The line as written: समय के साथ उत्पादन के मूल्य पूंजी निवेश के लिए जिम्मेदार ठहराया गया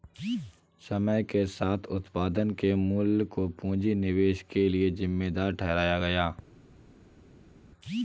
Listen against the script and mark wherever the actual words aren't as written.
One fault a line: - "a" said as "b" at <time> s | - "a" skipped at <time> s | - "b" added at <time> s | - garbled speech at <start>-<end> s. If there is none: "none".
- "को" added at 3.3 s